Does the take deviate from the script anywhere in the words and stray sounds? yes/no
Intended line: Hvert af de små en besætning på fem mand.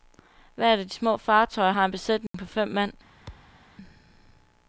yes